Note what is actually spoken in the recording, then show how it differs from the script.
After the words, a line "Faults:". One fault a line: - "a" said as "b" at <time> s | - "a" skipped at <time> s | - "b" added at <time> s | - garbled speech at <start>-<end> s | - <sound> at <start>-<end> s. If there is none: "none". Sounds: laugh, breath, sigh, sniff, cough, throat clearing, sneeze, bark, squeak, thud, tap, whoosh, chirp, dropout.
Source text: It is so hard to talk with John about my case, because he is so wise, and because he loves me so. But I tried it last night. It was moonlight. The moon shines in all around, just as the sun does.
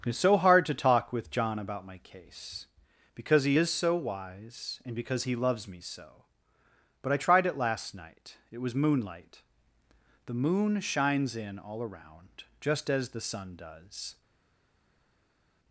It is so hard to talk with John about my case, because he is so wise, and because he loves me so. But I tried it last night. It was moonlight. The moon shines in all around, just as the sun does.
Faults:
none